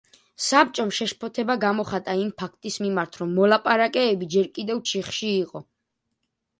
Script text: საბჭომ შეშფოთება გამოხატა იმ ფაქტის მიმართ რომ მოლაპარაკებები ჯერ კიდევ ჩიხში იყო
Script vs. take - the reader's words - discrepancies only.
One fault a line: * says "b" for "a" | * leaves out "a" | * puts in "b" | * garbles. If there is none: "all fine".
all fine